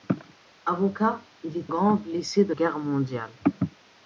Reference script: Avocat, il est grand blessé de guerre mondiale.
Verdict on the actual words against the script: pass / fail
pass